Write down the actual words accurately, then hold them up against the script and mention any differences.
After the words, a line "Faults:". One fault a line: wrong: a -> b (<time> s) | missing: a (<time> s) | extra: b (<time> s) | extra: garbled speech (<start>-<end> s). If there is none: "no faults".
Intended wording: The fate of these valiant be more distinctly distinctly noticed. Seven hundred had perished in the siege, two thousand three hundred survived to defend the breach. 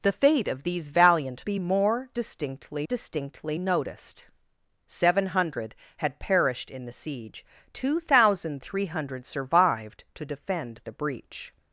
The fate of these valiant be more distinctly distinctly noticed. Seven hundred had perished in the siege, two thousand three hundred survived to defend the breach.
Faults:
no faults